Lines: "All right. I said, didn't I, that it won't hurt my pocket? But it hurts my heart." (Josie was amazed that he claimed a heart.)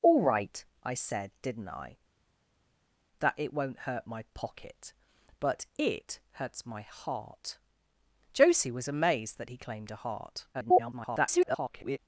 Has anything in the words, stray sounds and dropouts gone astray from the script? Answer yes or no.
yes